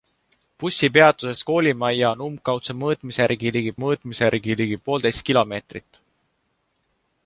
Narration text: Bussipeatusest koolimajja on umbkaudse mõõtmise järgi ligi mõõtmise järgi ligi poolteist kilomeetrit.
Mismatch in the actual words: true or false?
false